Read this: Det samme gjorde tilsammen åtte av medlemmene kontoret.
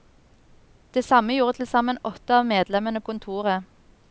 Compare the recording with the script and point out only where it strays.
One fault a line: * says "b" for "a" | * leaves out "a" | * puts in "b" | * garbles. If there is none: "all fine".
all fine